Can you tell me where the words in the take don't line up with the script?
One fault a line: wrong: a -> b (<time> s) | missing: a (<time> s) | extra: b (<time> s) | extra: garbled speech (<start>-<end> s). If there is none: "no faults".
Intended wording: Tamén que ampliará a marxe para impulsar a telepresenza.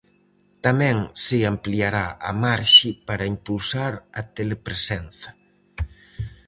wrong: que -> se (1.2 s)